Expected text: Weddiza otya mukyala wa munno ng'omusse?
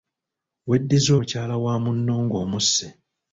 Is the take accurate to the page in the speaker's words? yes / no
no